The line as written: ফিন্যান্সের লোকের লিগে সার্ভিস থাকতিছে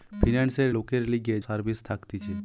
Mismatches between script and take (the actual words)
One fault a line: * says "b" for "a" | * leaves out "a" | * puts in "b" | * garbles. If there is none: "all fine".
all fine